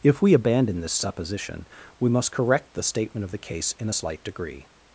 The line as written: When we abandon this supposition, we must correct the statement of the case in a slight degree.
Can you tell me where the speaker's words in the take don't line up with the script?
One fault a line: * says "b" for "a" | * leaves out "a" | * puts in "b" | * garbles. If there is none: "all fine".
* says "If" for "When"